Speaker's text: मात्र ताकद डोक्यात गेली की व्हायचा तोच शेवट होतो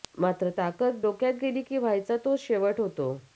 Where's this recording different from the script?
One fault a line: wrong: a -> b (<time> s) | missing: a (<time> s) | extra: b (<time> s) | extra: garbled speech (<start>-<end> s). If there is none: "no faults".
no faults